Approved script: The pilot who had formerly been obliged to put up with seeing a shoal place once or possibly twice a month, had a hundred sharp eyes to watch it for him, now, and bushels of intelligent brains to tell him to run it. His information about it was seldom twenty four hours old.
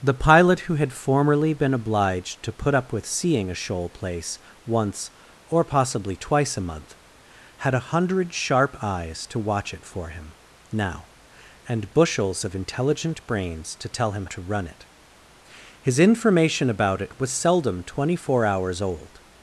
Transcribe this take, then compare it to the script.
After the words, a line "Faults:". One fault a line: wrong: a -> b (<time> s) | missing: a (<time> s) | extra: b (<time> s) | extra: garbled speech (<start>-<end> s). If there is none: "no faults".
The pilot who had formerly been obliged to put up with seeing a shoal place once or possibly twice a month, had a hundred sharp eyes to watch it for him, now, and bushels of intelligent brains to tell him to run it. His information about it was seldom twenty four hours old.
Faults:
no faults